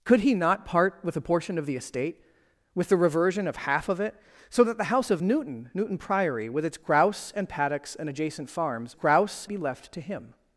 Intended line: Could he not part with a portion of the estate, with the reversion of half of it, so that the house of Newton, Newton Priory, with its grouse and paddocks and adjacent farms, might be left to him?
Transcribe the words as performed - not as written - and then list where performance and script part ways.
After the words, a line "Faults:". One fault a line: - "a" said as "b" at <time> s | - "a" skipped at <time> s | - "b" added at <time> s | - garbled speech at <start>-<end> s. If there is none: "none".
Could he not part with a portion of the estate, with the reversion of half of it, so that the house of Newton, Newton Priory, with its grouse and paddocks and adjacent farms, grouse be left to him?
Faults:
- "might" said as "grouse" at 8.9 s